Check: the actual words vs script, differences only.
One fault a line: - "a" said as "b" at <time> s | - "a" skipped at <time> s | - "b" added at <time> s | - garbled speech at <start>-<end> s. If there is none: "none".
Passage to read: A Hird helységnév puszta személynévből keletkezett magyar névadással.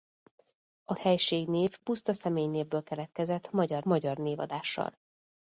- "Hird" skipped at 0.9 s
- "magyar" added at 3.8 s